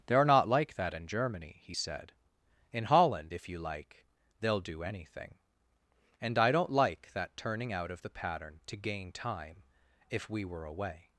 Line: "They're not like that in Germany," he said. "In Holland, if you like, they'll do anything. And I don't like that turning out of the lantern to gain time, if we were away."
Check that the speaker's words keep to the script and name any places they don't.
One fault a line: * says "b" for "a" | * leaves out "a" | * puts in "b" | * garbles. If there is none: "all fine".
* says "pattern" for "lantern"